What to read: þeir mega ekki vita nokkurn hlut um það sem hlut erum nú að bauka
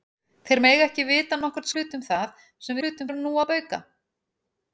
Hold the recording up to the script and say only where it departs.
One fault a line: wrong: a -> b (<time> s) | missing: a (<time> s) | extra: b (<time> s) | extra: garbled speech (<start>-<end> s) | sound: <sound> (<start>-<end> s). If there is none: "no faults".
no faults